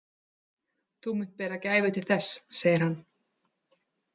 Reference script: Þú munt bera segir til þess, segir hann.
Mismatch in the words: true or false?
true